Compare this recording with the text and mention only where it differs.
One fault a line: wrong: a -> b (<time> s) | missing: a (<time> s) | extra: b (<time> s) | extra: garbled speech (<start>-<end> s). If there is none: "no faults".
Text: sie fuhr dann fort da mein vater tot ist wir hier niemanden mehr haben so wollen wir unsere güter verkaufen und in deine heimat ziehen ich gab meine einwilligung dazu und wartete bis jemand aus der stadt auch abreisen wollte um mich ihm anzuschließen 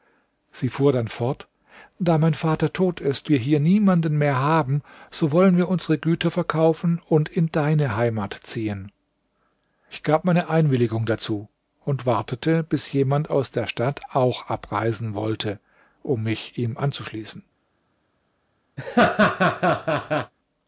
no faults